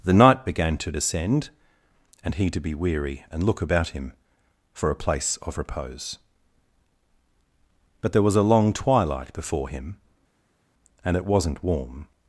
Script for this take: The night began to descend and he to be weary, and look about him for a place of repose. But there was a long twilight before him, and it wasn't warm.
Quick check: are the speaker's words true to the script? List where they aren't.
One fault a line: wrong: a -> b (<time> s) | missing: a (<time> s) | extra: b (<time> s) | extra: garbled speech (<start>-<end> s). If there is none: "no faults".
no faults